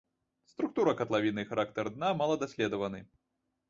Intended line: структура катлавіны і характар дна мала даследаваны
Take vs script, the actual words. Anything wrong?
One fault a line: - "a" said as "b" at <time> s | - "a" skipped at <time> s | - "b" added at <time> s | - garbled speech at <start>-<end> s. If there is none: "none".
none